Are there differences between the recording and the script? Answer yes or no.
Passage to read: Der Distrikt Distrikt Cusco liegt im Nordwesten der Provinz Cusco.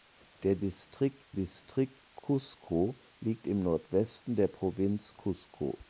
no